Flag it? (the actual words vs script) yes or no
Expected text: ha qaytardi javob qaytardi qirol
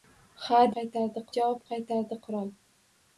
no